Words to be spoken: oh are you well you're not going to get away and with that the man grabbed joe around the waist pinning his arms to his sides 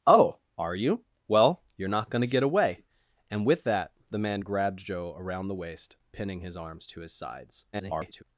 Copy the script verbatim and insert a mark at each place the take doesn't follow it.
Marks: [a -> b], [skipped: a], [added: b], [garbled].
oh are you well you're not going to get away and with that the man grabbed joe around the waist pinning his arms to his sides [garbled]